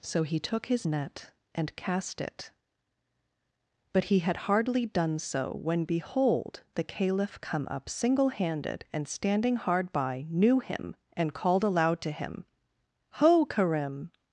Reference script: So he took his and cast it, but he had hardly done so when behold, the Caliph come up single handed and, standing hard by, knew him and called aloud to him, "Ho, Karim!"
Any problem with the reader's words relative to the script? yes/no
yes